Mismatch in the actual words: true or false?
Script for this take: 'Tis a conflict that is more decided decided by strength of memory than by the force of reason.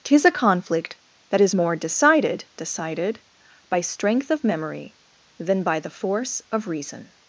false